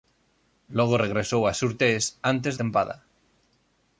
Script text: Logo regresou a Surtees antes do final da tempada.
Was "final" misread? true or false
true